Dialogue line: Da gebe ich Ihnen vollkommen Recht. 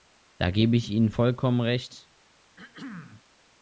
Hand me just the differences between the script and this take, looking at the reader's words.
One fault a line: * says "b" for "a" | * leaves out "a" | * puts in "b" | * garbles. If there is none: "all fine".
all fine